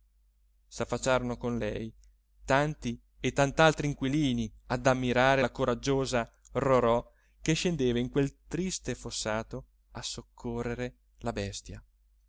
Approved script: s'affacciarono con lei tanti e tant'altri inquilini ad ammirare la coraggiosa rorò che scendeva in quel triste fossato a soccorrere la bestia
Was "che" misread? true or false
false